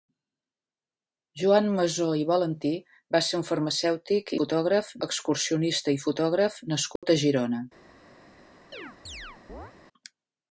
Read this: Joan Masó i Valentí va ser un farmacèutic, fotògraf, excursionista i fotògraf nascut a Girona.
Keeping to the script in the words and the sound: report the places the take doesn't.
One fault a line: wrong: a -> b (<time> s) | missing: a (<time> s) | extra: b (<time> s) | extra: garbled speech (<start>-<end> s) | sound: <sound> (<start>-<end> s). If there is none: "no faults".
sound: dropout (7.0-7.0 s)
sound: chirp (8.7-9.7 s)